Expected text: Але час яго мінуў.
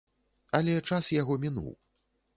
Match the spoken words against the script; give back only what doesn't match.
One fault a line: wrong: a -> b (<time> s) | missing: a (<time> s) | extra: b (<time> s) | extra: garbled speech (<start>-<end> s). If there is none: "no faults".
no faults